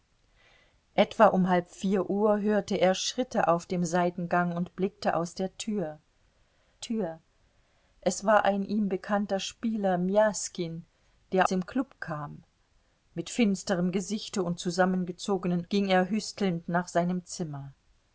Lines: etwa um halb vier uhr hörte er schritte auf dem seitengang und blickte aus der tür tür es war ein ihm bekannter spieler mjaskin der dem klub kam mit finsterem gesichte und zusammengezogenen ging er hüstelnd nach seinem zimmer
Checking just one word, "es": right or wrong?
right